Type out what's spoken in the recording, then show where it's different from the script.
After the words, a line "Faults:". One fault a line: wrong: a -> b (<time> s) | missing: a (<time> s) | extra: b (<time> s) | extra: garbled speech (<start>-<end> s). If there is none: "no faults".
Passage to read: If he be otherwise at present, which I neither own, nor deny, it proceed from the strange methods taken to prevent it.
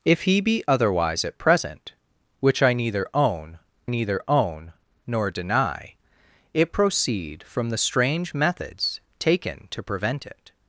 If he be otherwise at present, which I neither own neither own, nor deny, it proceed from the strange methods taken to prevent it.
Faults:
extra: neither own (3.9 s)